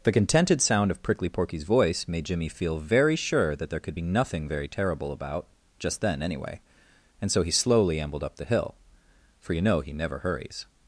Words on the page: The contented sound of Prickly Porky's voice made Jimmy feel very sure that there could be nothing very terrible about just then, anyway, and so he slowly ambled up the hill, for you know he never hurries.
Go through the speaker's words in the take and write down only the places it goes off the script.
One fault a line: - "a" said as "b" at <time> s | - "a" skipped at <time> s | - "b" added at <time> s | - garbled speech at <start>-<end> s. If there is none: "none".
none